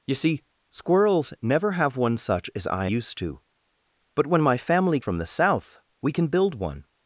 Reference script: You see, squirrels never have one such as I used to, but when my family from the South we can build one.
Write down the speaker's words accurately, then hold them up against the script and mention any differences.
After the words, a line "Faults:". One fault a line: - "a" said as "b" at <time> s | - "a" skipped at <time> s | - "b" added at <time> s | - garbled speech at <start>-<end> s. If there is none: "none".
You see, squirrels never have one such as I used to, but when my family from the South we can build one.
Faults:
none